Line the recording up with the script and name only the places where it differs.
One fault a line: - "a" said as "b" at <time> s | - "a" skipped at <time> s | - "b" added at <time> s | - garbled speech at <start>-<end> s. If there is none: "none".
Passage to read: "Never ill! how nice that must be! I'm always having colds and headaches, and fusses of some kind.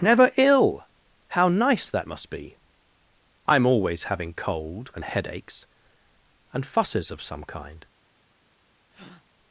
- "colds" said as "cold" at 4.3 s